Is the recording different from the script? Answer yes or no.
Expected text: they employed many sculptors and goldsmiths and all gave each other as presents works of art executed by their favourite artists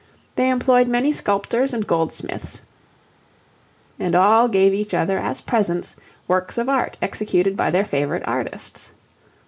no